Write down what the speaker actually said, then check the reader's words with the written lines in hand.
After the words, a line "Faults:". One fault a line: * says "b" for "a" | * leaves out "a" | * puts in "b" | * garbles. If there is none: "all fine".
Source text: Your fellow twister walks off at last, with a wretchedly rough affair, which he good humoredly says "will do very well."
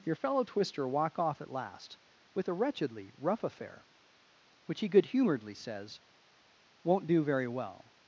Your fellow twister walk off at last, with a wretchedly rough affair, which he good humoredly says "won't do very well."
Faults:
* says "walk" for "walks"
* says "won't" for "will"